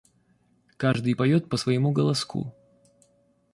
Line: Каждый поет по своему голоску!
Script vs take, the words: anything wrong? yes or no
no